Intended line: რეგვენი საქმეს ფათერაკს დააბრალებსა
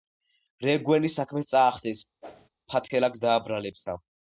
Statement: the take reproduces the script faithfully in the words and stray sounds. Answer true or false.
false